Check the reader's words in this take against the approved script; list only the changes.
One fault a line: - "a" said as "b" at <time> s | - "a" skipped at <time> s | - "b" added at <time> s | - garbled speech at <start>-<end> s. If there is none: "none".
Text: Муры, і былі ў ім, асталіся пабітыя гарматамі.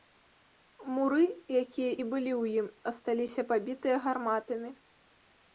- "якія" added at 1.6 s